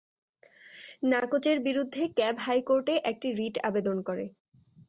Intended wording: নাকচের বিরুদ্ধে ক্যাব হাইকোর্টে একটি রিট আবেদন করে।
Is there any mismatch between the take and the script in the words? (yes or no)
no